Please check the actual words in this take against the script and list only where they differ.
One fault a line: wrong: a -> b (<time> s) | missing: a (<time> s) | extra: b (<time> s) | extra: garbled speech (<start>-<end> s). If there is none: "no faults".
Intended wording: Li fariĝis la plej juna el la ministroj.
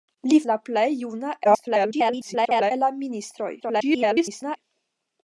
missing: fariĝis (0.4 s)
extra: garbled speech (1.4-2.7 s)
extra: garbled speech (3.6-4.6 s)